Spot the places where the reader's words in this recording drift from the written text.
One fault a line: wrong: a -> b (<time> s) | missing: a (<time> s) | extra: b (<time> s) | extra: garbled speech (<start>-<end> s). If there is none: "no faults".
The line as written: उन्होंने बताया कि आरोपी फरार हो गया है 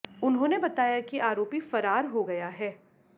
no faults